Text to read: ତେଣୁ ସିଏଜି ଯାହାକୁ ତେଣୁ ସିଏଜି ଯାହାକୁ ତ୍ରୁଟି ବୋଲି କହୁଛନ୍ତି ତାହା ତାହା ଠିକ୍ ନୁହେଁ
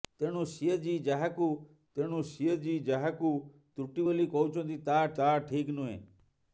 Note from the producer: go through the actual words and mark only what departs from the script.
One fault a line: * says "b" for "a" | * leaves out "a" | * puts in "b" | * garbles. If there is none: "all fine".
all fine